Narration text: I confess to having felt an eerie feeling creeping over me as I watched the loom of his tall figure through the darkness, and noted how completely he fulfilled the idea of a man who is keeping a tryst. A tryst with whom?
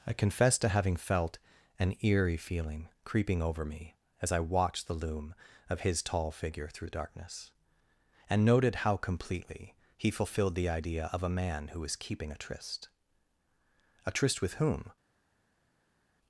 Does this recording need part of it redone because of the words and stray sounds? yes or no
yes